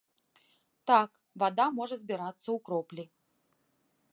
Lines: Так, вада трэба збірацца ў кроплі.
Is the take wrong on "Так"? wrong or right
right